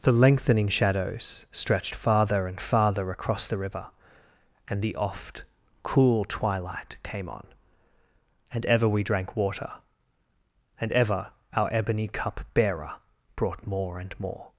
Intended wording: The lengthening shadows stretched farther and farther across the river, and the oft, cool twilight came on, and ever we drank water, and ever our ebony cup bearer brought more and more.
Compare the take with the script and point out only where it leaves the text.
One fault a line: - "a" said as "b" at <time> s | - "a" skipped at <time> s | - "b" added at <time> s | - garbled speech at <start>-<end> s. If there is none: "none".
none